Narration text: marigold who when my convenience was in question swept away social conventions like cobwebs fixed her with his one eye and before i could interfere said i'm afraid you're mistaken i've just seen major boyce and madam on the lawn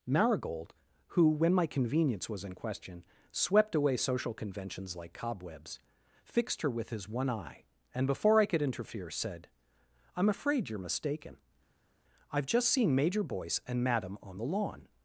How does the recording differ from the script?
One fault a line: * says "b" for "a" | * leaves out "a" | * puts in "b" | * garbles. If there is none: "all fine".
all fine